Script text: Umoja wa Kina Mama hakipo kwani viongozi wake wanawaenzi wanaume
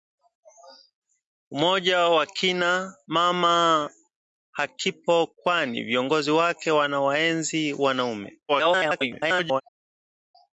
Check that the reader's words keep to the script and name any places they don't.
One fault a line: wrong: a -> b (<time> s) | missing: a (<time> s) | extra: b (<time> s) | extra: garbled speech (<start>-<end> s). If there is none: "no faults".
extra: garbled speech (8.5-9.6 s)